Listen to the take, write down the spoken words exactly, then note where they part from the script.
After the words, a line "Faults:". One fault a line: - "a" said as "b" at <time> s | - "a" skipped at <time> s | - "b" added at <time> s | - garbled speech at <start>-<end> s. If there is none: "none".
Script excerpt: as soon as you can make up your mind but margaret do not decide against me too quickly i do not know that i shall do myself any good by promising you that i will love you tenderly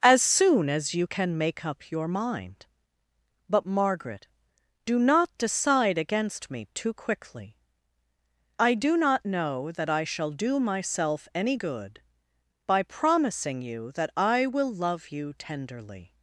as soon as you can make up your mind but margaret do not decide against me too quickly i do not know that i shall do myself any good by promising you that i will love you tenderly
Faults:
none